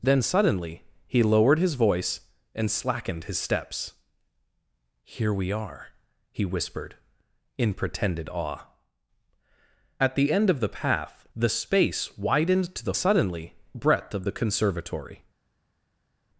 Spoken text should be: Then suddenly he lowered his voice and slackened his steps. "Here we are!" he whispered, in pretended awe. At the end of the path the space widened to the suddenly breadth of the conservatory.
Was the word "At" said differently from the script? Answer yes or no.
no